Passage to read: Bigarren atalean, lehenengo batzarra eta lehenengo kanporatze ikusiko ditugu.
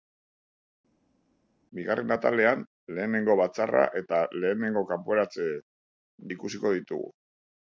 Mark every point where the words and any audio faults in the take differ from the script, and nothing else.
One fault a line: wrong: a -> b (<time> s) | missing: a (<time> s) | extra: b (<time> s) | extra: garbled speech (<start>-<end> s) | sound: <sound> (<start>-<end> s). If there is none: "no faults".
no faults